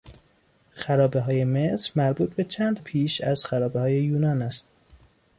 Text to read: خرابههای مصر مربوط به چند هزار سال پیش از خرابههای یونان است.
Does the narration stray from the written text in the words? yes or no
yes